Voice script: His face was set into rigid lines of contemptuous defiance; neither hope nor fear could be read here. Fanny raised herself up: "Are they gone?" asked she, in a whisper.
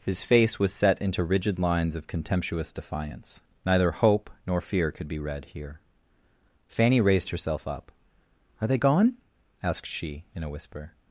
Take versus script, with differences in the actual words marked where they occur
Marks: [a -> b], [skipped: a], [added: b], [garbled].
His face was set into rigid lines of contemptuous defiance; neither hope nor fear could be read here. Fanny raised herself up: "Are they gone?" asked she, in a whisper.